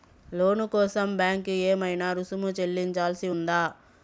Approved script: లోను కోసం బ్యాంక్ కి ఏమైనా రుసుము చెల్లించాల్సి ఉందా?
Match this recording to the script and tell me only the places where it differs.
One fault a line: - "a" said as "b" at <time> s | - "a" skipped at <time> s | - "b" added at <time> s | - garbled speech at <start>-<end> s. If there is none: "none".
none